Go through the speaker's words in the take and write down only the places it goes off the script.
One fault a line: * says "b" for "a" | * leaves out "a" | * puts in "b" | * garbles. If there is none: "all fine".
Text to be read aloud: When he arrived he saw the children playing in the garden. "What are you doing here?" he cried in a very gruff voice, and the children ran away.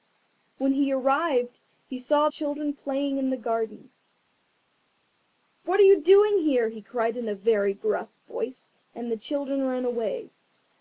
* leaves out "the"